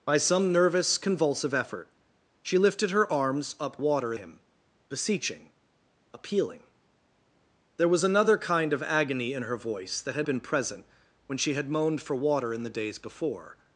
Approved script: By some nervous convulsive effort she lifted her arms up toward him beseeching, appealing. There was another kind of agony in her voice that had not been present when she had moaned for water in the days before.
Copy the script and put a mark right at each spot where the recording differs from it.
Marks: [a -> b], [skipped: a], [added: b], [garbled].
By some nervous convulsive effort she lifted her arms up [toward -> water] him beseeching, appealing. There was another kind of agony in her voice that had [skipped: not] been present when she had moaned for water in the days before.